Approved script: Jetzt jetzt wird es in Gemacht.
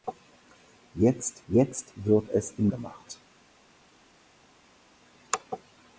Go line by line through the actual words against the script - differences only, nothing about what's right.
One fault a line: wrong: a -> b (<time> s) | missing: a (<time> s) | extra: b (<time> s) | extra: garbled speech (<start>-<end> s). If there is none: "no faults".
no faults